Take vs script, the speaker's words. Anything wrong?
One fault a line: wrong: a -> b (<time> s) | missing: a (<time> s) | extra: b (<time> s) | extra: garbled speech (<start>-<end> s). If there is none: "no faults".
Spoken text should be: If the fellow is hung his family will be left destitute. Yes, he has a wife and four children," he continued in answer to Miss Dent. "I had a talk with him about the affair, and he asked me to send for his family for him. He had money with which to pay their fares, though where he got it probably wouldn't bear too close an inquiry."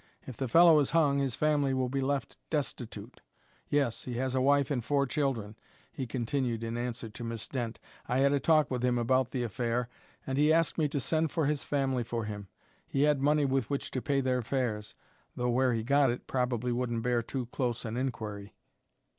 no faults